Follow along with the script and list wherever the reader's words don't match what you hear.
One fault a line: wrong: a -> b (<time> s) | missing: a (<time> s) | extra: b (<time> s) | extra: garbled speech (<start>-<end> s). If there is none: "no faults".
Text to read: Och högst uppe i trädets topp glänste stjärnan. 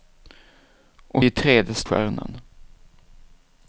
missing: högst uppe (1.2 s)
missing: topp glänste (1.8 s)